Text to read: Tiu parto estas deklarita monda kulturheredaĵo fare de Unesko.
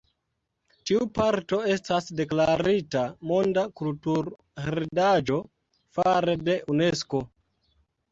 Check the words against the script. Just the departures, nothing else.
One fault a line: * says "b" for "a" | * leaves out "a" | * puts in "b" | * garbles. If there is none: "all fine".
all fine